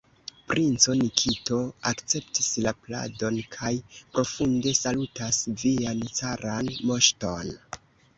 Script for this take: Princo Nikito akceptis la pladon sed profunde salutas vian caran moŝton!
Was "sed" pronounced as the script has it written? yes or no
no